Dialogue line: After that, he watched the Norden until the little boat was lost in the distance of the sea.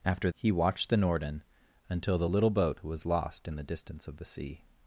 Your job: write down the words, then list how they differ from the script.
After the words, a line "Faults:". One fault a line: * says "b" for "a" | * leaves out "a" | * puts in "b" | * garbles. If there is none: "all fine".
After he watched the Norden until the little boat was lost in the distance of the sea.
Faults:
* leaves out "that"